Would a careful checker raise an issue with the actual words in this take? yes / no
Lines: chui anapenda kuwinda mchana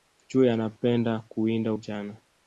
no